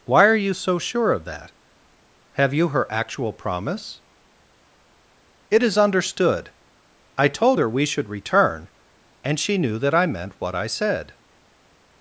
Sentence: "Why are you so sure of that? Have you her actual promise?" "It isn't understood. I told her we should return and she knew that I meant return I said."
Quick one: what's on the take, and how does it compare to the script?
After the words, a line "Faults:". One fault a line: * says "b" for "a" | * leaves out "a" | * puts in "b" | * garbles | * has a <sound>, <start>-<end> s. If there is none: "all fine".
"Why are you so sure of that? Have you her actual promise?" "It is understood. I told her we should return and she knew that I meant what I said."
Faults:
* says "is" for "isn't"
* says "what" for "return"